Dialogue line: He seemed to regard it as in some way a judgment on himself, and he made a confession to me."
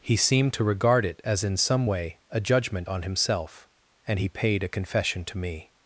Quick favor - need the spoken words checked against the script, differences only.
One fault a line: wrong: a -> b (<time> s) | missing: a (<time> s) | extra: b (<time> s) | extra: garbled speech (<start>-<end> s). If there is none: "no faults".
wrong: made -> paid (4.3 s)